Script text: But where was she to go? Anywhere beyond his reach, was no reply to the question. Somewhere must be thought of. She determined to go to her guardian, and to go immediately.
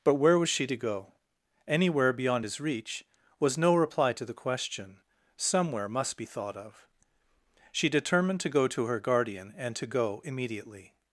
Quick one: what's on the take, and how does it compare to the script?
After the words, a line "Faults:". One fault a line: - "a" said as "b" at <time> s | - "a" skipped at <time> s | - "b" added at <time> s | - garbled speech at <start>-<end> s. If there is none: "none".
But where was she to go? Anywhere beyond his reach, was no reply to the question. Somewhere must be thought of. She determined to go to her guardian, and to go immediately.
Faults:
none